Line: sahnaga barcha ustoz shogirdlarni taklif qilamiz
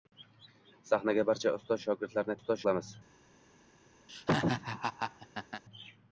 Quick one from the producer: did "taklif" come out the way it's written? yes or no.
no